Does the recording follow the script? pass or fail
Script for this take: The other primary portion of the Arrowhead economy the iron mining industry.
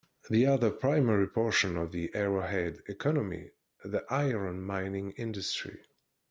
pass